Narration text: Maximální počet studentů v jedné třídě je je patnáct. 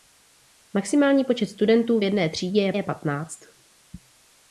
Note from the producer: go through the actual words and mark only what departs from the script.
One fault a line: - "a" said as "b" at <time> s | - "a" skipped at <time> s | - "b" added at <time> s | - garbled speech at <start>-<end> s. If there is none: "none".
none